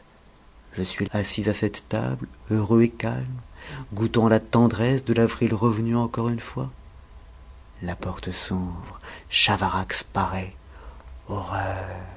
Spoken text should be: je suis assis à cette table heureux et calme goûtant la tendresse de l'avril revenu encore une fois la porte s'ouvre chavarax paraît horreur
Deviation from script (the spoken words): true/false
false